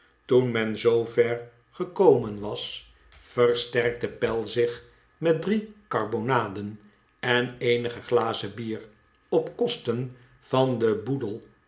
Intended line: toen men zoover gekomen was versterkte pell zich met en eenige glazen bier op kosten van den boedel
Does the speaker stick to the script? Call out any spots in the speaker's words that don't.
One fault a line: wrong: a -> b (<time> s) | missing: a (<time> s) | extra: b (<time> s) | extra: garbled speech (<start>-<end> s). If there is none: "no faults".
extra: drie karbonaden (5.4 s)